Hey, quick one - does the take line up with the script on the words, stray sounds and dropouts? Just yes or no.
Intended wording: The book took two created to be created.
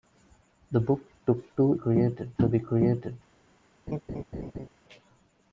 no